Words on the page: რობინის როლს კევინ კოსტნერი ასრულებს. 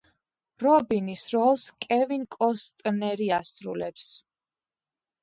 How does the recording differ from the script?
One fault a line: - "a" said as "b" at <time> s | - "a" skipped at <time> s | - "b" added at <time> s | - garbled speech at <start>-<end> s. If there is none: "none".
none